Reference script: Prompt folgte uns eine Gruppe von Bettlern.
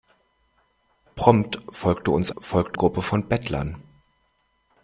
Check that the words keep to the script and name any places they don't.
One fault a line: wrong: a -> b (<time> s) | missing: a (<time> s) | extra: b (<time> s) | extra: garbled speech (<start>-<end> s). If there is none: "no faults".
wrong: eine -> folgte (2.4 s)